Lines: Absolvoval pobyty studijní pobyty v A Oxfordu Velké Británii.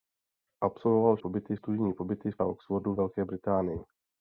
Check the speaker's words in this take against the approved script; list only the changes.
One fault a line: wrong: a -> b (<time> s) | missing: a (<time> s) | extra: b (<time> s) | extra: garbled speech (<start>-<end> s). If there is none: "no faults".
no faults